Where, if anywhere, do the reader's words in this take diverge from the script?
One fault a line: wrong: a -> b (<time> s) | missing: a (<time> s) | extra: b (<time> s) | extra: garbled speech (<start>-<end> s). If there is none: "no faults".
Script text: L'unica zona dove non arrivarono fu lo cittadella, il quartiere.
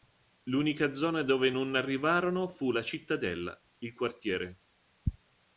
wrong: lo -> la (2.7 s)